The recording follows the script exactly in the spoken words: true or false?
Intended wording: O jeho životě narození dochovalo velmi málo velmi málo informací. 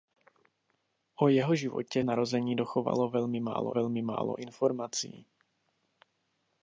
true